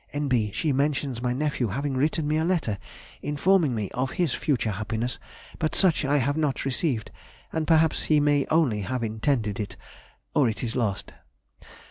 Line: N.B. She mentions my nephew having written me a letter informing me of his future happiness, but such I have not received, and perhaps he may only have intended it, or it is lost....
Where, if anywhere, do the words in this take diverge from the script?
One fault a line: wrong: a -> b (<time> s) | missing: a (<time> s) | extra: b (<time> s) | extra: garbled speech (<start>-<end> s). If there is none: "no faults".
no faults